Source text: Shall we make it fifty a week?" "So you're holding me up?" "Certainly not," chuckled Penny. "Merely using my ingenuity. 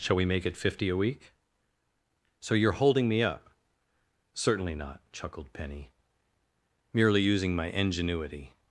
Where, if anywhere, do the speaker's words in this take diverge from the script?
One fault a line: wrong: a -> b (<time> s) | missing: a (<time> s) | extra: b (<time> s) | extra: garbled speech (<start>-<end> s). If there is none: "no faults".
no faults